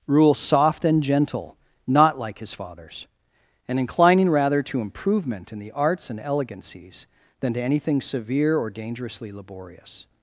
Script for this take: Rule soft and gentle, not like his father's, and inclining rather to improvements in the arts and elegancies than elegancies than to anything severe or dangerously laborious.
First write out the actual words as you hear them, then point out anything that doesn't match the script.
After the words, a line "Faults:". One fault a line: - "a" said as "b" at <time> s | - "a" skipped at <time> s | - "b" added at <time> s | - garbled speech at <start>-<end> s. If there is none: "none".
Rule soft and gentle, not like his father's, and inclining rather to improvement in the arts and elegancies than to anything severe or dangerously laborious.
Faults:
- "improvements" said as "improvement" at 4.8 s
- "elegancies than" skipped at 7.5 s